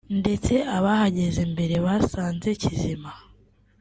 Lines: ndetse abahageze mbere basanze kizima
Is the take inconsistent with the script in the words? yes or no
no